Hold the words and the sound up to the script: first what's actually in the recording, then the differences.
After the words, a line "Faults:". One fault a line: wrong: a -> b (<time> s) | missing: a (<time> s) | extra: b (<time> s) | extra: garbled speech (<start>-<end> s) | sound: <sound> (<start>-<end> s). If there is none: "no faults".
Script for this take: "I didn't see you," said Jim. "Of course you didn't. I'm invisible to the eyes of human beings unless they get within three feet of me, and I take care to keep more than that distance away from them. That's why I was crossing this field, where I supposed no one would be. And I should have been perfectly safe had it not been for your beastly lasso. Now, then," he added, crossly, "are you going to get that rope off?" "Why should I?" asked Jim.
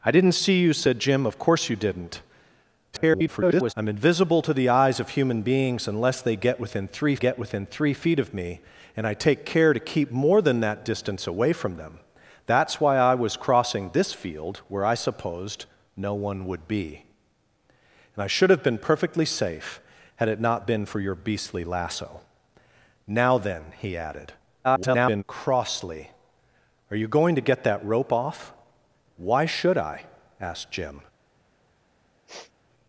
"I didn't see you," said Jim. "Of course you didn't. [garbled] I'm invisible to the eyes of human beings unless they get within three get within three feet of me, and I take care to keep more than that distance away from them. That's why I was crossing this field, where I supposed no one would be. And I should have been perfectly safe had it not been for your beastly lasso. Now, then," he added, [garbled] crossly, "are you going to get that rope off?" "Why should I?" asked Jim.
Faults:
extra: garbled speech (2.9-3.7 s)
extra: get within three (7.1 s)
extra: garbled speech (24.6-25.2 s)
sound: sniff (32.3-32.5 s)